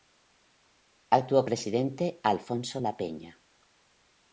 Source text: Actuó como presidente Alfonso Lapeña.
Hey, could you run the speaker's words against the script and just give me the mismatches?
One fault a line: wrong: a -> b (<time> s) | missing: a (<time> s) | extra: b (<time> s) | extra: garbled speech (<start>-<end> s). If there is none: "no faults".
missing: como (1.4 s)